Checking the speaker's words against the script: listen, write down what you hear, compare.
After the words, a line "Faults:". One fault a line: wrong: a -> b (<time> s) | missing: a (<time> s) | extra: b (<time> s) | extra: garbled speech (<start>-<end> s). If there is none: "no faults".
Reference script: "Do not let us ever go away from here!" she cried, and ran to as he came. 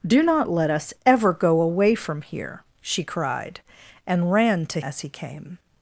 "Do not let us ever go away from here!" she cried, and ran to as he came.
Faults:
no faults